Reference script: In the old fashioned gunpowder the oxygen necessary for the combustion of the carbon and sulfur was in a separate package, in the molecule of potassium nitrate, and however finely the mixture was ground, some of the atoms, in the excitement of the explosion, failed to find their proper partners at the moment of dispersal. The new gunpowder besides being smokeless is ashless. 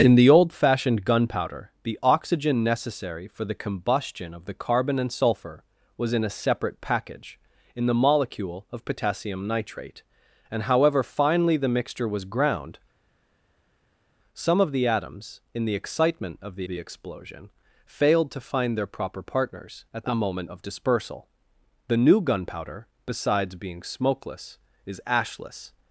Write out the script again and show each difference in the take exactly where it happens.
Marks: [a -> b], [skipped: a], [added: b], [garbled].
In the old fashioned gunpowder the oxygen necessary for the combustion of the carbon and sulfur was in a separate package, in the molecule of potassium nitrate, and however finely the mixture was ground, some of the atoms, in the excitement of the [added: the] explosion, failed to find their proper partners at the moment of dispersal. The new gunpowder besides being smokeless is ashless.